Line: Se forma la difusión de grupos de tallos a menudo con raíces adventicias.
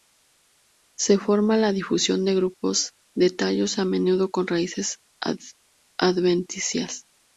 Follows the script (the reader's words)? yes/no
yes